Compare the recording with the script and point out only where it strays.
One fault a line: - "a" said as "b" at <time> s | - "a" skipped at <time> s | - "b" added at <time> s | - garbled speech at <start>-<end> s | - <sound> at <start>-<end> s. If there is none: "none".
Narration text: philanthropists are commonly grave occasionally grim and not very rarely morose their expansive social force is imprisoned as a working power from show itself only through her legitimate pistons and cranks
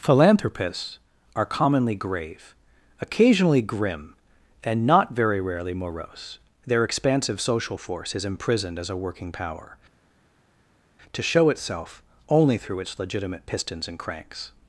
- "from" said as "to" at 11.1 s
- "her" said as "its" at 12.8 s